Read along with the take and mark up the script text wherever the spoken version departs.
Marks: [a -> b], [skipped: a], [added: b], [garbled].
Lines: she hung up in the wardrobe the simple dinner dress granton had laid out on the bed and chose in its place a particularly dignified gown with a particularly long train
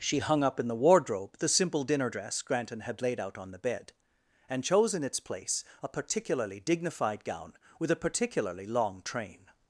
she hung up in the wardrobe the simple dinner dress granton had laid out on the bed and chose in its place a particularly dignified gown with a particularly long train